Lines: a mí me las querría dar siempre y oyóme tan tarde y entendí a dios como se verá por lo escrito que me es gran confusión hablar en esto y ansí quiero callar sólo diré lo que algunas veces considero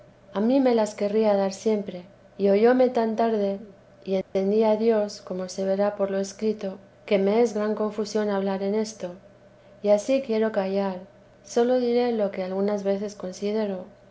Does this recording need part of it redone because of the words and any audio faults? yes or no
yes